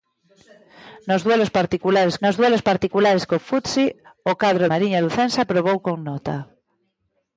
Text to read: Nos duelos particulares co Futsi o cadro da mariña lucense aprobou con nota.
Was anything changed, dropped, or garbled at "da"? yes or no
yes